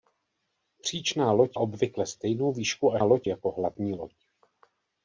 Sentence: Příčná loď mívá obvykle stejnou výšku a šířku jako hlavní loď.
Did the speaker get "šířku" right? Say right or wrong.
wrong